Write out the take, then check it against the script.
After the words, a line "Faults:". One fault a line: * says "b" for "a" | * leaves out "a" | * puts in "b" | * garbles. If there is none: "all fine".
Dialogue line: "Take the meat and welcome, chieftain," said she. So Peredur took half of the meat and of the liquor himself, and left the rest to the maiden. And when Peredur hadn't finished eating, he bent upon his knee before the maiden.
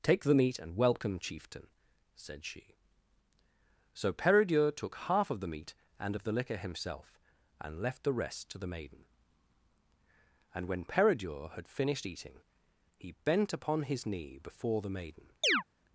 "Take the meat and welcome, chieftain," said she. So Peredur took half of the meat and of the liquor himself, and left the rest to the maiden. And when Peredur had finished eating, he bent upon his knee before the maiden.
Faults:
* says "had" for "hadn't"